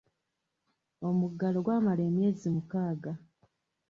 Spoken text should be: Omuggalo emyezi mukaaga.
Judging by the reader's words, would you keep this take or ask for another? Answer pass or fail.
fail